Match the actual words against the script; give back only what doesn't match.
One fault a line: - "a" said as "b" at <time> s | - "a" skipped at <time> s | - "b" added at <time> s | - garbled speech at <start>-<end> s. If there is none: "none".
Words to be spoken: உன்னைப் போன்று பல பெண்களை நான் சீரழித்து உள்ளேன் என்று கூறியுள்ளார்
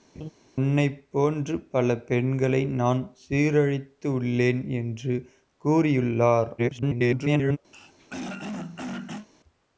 - garbled speech at 6.6-7.6 s